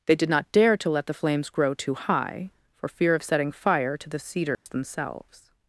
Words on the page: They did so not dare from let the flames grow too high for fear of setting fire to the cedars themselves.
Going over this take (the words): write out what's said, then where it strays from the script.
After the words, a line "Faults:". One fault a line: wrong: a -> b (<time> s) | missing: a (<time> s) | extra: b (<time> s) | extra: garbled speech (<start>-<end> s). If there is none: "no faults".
They did not dare to let the flames grow too high for fear of setting fire to the cedars themselves.
Faults:
missing: so (0.3 s)
wrong: from -> to (0.8 s)